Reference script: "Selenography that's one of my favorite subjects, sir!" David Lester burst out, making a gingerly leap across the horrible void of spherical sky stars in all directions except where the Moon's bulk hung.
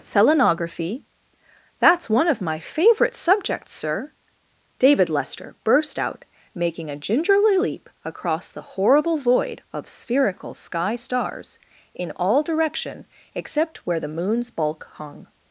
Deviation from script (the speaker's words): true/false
true